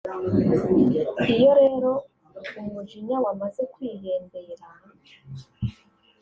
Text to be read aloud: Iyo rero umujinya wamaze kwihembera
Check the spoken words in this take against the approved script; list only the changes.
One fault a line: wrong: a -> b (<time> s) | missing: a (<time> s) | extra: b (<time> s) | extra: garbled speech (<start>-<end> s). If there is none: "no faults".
no faults